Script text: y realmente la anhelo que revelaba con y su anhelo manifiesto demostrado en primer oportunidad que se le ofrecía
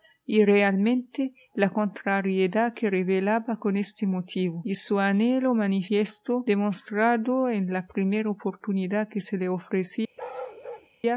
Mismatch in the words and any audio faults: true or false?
true